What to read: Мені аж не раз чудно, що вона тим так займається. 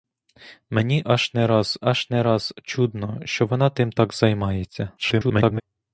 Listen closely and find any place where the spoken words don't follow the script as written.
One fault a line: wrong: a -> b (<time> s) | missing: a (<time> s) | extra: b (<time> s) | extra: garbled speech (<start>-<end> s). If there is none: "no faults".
extra: аж не раз (1.8 s)
extra: garbled speech (5.0-5.6 s)